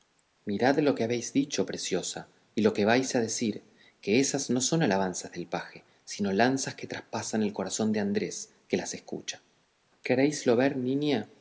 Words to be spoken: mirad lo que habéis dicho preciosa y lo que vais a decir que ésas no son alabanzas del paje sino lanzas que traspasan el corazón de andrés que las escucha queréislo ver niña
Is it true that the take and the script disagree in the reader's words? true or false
false